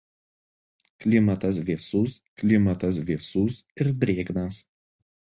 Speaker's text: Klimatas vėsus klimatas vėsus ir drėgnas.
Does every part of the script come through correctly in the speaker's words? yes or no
yes